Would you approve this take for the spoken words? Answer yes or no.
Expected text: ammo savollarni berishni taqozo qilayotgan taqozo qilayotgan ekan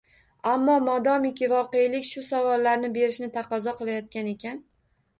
no